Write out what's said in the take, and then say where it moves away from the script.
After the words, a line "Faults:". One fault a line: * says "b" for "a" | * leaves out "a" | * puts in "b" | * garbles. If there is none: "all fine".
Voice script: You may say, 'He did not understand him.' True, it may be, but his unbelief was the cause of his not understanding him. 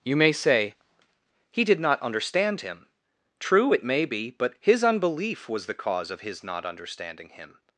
You may say, 'He did not understand him.' True, it may be, but his unbelief was the cause of his not understanding him.
Faults:
all fine